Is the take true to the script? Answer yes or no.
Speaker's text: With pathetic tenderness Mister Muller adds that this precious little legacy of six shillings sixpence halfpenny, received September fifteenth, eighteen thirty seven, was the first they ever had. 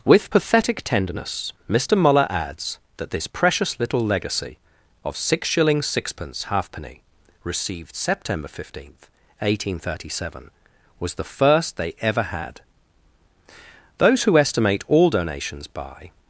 no